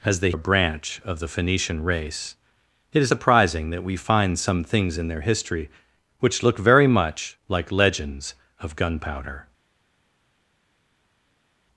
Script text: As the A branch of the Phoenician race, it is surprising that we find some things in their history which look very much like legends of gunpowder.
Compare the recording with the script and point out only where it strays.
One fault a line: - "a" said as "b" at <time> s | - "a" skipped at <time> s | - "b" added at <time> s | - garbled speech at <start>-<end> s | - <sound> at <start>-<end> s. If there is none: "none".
none